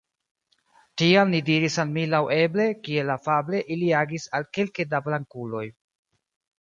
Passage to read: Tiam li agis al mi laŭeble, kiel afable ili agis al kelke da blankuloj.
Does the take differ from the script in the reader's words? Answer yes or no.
yes